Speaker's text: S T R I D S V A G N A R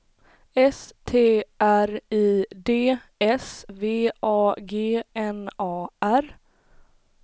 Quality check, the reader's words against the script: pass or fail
pass